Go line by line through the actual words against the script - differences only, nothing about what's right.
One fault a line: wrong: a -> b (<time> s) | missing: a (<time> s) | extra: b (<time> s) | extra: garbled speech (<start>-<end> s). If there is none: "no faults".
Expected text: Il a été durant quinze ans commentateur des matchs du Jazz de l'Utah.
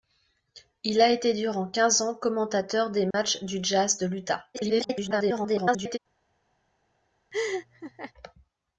extra: garbled speech (4.5-6.0 s)